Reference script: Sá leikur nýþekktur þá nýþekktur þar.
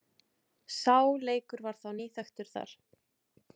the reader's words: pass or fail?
fail